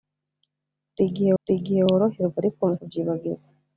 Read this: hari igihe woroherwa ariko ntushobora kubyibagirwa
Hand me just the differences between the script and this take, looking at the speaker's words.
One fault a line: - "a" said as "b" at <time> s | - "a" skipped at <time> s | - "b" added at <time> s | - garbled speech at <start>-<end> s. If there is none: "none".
- "hari igihe" added at 1.4 s
- "ntushobora" skipped at 2.6 s